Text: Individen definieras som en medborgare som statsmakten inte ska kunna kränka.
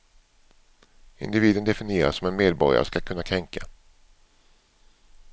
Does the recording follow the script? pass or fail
fail